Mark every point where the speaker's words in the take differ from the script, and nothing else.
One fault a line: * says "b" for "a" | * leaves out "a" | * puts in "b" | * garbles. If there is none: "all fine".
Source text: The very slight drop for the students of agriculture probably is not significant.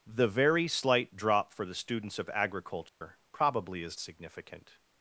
* leaves out "not"